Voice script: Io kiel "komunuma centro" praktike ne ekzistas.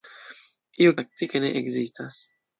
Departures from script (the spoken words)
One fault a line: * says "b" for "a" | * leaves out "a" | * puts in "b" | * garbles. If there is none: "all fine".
* leaves out "kiel komunuma centro"